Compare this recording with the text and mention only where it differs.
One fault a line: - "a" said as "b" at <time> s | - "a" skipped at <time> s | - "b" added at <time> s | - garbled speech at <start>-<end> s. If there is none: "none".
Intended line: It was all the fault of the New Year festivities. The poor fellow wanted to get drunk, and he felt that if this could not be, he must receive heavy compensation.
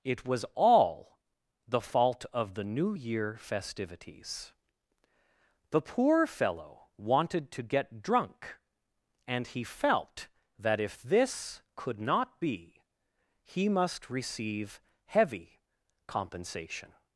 none